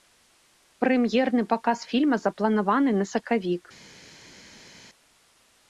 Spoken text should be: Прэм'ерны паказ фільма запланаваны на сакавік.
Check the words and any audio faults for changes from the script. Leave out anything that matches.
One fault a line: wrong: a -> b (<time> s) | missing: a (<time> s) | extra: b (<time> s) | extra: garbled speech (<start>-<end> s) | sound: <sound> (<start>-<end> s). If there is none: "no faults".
no faults